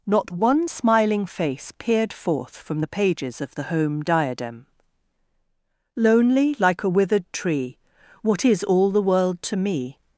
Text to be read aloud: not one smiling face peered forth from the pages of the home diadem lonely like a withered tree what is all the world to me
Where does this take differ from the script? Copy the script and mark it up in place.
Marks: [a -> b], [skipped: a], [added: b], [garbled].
not one smiling face peered forth from the pages of the home diadem lonely like a withered tree what is all the world to me